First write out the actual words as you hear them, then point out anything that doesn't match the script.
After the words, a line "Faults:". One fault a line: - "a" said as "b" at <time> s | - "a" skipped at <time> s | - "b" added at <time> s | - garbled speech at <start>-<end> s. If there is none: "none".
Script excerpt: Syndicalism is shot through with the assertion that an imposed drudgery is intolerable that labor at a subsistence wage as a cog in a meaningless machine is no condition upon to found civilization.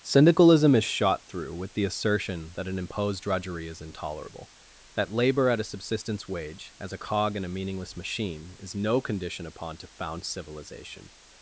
Syndicalism is shot through with the assertion that an imposed drudgery is intolerable that labor at a subsistence wage as a cog in a meaningless machine is no condition upon to found civilization.
Faults:
none